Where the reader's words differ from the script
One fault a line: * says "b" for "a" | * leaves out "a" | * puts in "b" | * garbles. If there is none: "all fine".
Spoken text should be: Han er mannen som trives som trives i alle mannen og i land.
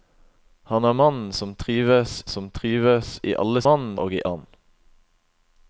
all fine